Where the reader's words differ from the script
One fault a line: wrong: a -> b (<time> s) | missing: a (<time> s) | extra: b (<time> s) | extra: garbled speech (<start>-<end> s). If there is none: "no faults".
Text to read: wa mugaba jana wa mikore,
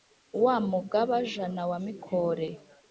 no faults